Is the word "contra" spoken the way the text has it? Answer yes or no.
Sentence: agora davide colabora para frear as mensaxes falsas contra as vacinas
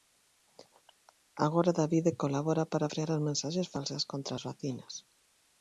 yes